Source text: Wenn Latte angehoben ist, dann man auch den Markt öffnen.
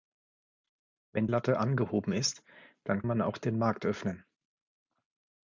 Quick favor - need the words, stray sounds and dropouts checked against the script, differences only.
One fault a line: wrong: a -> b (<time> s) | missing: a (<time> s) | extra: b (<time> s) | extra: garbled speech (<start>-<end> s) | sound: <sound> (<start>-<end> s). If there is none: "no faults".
no faults